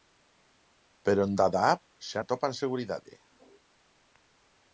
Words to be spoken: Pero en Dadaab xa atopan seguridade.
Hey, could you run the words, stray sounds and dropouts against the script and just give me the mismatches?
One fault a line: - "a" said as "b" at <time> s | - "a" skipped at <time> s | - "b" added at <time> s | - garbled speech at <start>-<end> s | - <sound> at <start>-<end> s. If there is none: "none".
none